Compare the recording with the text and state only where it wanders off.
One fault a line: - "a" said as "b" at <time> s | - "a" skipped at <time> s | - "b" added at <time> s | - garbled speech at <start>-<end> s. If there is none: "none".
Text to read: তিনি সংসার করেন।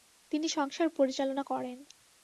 - "পরিচালনা" added at 0.9 s